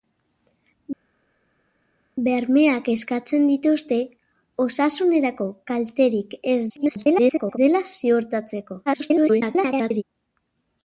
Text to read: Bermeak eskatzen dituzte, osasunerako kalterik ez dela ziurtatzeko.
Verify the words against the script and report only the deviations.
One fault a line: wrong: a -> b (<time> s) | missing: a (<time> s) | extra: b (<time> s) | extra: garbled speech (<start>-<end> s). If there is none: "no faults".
extra: garbled speech (6.7-7.6 s)
extra: garbled speech (8.9-10.0 s)